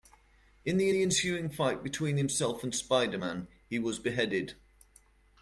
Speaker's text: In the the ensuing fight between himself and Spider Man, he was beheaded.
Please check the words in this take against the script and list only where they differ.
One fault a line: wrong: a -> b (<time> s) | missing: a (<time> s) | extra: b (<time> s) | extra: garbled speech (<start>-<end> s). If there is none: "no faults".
no faults